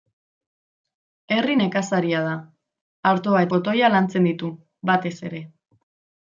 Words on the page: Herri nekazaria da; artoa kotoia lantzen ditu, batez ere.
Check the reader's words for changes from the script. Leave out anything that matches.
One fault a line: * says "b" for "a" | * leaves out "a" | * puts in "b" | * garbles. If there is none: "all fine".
all fine